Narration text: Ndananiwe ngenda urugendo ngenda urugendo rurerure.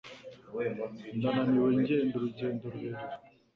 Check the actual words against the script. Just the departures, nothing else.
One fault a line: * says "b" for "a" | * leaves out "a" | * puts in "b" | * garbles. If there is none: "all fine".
* leaves out "ngenda urugendo"